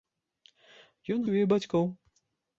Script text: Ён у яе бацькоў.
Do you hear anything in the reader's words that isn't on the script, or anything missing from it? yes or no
no